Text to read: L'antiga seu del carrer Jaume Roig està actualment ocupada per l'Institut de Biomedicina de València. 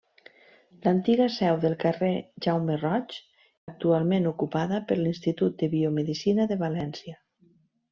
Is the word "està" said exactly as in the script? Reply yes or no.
no